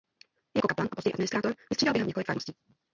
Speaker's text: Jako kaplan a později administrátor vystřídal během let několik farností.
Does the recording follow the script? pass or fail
fail